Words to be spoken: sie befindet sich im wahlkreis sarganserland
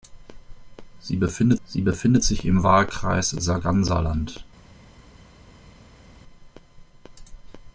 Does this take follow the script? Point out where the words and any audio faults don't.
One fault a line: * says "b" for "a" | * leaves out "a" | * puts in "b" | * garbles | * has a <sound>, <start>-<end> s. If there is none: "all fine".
* puts in "sie befindet"